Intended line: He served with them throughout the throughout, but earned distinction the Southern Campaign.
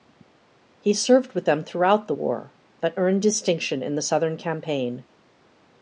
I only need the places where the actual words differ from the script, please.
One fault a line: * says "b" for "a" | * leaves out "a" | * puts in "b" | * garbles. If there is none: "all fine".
* says "war" for "throughout"
* puts in "in"